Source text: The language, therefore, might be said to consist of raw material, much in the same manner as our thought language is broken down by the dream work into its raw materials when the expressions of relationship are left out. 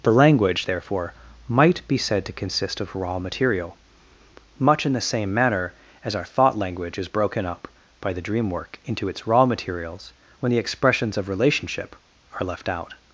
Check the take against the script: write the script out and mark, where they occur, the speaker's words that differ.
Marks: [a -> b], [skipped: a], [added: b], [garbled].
The language, therefore, might be said to consist of raw material, much in the same manner as our thought language is broken [down -> up] by the dream work into its raw materials when the expressions of relationship are left out.